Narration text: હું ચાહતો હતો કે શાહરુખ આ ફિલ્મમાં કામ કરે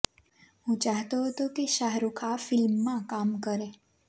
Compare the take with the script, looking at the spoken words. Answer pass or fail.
pass